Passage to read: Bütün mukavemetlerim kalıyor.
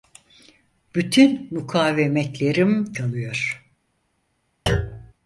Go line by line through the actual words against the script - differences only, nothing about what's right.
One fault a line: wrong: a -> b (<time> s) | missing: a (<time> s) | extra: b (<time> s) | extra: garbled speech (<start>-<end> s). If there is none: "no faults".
no faults